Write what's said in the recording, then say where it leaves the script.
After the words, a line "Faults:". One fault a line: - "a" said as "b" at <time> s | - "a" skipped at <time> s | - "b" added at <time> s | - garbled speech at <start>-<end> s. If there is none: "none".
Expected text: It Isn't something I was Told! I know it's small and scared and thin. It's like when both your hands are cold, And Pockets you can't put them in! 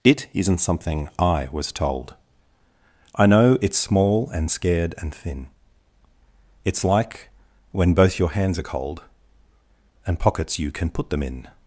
It Isn't something I was Told! I know it's small and scared and thin. It's like when both your hands are cold, And Pockets you can put them in!
Faults:
- "can't" said as "can" at 10.7 s